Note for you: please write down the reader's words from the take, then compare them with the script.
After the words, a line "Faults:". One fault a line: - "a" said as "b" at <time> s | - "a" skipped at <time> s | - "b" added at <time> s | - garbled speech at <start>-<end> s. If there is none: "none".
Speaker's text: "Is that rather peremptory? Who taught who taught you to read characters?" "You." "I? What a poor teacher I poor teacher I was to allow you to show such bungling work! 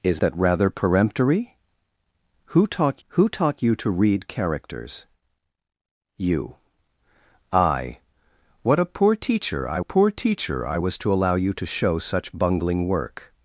"Is that rather peremptory? Who taught who taught you to read characters?" "You." "I? What a poor teacher I poor teacher I was to allow you to show such bungling work!
Faults:
none